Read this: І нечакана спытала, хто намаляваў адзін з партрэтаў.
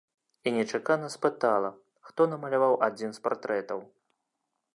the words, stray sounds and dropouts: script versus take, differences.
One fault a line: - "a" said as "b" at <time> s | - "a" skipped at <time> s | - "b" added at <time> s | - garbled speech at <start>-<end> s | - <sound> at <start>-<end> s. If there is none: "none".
none